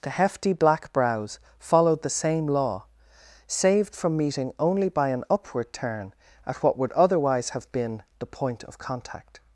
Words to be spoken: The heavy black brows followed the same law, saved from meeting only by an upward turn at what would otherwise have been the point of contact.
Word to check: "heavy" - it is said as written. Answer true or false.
false